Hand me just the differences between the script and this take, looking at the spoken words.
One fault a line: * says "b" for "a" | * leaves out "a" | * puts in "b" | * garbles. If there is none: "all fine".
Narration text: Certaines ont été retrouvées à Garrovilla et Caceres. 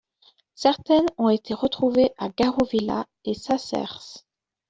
all fine